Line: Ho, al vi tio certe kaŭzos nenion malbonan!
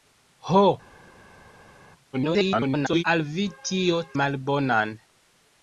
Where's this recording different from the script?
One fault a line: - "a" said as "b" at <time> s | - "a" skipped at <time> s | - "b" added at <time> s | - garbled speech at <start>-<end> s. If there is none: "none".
- garbled speech at 2.1-3.0 s
- "certe kaŭzos nenion" skipped at 4.0 s